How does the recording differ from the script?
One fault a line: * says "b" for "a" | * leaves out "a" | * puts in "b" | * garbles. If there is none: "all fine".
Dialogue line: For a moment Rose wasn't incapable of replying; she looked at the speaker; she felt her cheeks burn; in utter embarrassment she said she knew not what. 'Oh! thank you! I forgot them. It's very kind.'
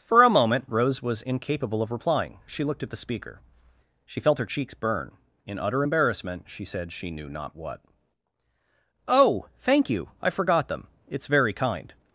* says "was" for "wasn't"